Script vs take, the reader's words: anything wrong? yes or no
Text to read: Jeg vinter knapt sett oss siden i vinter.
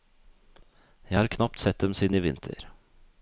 yes